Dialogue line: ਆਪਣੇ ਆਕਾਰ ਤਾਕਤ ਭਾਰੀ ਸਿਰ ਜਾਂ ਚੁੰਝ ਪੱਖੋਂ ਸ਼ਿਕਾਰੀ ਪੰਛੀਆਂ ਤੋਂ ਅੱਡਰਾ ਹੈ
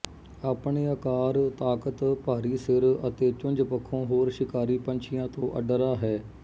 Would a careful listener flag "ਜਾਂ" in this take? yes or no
yes